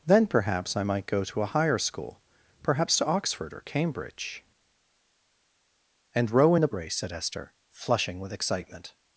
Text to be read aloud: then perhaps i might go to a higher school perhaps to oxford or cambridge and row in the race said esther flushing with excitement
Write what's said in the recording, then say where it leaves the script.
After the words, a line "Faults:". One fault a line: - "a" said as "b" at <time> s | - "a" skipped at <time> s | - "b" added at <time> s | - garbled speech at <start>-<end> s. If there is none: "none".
then perhaps i might go to a higher school perhaps to oxford or cambridge and row in the race said esther flushing with excitement
Faults:
none